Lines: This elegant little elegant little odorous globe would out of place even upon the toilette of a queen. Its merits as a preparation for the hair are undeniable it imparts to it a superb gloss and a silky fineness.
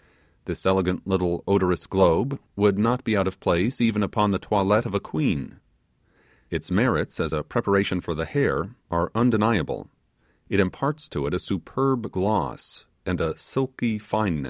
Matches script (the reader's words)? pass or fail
fail